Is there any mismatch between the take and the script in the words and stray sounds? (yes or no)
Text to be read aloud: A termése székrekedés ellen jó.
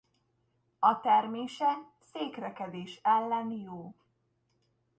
no